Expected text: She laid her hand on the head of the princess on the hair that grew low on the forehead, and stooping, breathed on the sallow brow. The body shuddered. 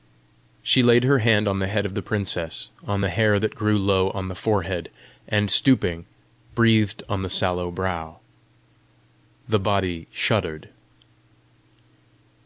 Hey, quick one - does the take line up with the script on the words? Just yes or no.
yes